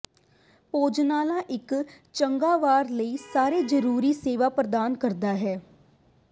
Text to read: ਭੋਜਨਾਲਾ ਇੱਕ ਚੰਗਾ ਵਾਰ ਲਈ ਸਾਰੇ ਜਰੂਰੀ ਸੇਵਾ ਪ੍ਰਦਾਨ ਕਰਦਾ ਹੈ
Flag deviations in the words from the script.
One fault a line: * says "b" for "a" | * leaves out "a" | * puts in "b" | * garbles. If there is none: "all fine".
all fine